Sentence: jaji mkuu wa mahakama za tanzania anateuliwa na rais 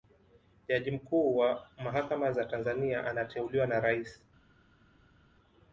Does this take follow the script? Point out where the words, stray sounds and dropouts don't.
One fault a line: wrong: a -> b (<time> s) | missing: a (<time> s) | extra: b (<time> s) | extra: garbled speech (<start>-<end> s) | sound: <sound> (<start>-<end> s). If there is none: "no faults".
no faults